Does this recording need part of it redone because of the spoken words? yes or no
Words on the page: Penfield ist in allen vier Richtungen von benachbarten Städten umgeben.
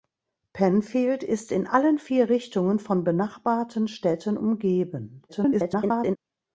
yes